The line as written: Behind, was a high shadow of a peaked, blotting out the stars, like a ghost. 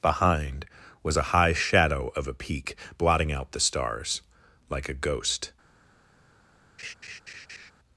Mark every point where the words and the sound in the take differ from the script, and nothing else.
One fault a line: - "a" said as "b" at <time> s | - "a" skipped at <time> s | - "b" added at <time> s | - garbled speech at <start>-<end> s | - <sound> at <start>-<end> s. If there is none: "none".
- "peaked" said as "peak" at 2.3 s
- laugh at 6.8-7.7 s